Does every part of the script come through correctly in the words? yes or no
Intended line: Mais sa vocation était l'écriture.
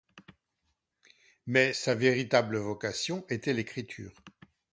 no